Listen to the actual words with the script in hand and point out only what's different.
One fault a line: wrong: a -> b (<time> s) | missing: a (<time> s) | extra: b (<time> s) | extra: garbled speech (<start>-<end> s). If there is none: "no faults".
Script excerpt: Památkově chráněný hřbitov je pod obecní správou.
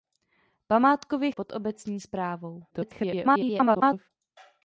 missing: chráněný hřbitov je (1.3 s)
extra: garbled speech (2.7-4.1 s)